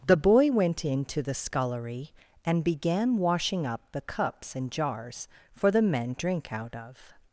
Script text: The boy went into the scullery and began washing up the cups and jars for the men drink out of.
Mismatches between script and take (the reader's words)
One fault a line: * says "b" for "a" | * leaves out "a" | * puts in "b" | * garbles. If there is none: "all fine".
all fine